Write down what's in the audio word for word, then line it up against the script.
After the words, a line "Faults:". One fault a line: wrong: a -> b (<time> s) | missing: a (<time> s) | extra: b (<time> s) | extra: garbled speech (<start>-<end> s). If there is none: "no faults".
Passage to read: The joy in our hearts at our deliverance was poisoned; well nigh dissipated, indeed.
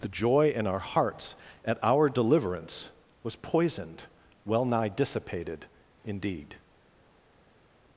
The joy in our hearts at our deliverance was poisoned; well nigh dissipated, indeed.
Faults:
no faults